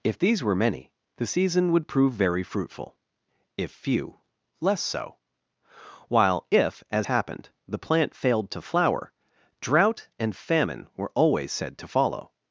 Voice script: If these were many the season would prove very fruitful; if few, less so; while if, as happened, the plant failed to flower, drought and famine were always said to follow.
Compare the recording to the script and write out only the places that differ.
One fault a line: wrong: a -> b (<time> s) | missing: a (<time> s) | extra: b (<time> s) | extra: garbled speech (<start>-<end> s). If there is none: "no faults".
no faults